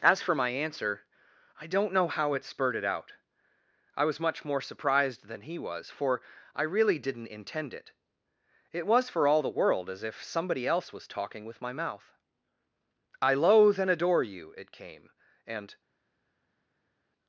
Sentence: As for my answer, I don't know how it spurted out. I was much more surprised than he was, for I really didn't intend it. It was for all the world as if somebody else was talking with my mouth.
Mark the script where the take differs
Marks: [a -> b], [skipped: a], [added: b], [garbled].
As for my answer, I don't know how it spurted out. I was much more surprised than he was, for I really didn't intend it. It was for all the world as if somebody else was talking with my mouth. [added: I loathe and adore you it came and]